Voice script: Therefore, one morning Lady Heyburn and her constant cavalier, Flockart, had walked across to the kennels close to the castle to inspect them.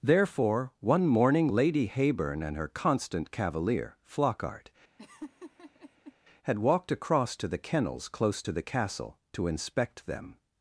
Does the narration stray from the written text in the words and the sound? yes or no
yes